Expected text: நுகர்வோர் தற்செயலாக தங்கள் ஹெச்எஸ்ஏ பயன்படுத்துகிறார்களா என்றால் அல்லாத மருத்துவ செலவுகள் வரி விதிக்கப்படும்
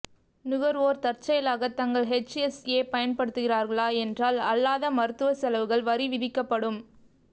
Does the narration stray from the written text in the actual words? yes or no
no